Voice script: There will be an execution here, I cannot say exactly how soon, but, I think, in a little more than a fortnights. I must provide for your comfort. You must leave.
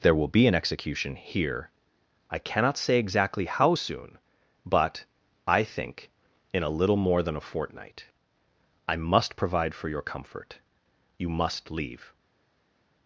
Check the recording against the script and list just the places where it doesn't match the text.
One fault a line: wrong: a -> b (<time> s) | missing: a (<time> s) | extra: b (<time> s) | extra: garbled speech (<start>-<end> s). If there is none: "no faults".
wrong: fortnights -> fortnight (7.4 s)